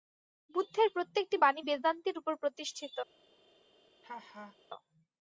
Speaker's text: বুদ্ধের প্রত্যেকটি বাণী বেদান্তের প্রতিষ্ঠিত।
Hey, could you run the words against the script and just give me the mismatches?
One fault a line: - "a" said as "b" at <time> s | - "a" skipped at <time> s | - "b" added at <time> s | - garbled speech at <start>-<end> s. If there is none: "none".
- "উপর" added at 2.2 s